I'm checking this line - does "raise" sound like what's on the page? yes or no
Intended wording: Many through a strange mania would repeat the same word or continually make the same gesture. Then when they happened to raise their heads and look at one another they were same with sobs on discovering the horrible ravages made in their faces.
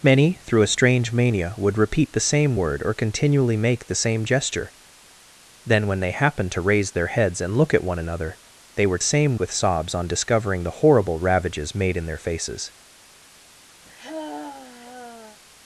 yes